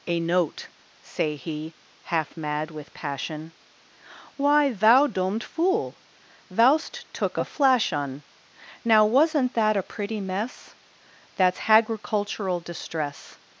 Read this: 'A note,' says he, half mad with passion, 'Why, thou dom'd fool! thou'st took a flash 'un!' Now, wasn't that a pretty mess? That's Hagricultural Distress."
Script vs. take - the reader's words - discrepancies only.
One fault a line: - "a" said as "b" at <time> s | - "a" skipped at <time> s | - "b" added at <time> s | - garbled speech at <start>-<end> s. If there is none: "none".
- "says" said as "say" at 1.0 s